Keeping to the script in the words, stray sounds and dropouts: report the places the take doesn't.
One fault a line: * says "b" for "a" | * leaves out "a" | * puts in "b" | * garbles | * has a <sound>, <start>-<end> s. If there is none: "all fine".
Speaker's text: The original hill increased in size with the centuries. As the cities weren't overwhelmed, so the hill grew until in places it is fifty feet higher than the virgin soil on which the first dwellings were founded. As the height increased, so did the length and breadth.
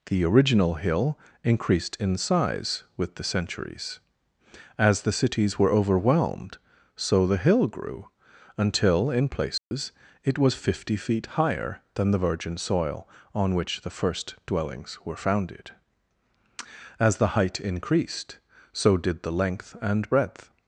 * says "were" for "weren't"
* has a dropout, 9.6-9.7 s
* says "was" for "is"